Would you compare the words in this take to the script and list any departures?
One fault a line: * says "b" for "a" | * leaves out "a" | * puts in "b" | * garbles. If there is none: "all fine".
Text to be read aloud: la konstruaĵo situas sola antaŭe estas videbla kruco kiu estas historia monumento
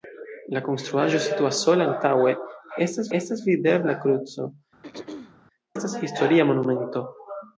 * puts in "estas"
* leaves out "kiu"